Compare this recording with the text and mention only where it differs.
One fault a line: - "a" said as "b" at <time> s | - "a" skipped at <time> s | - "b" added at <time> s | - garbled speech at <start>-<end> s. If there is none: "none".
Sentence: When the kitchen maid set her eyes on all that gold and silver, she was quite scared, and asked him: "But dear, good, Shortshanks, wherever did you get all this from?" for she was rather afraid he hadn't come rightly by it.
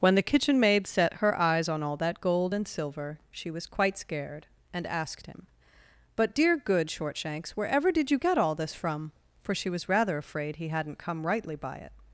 none